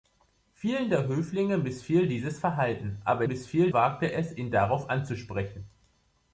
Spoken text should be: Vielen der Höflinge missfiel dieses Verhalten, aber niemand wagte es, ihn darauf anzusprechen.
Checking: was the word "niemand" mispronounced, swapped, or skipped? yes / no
yes